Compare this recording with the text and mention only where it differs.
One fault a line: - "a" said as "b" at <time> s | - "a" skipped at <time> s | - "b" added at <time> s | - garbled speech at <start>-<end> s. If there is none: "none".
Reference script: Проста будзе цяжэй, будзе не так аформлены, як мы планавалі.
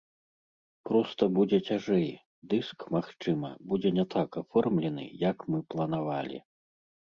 - "дыск магчыма" added at 2.5 s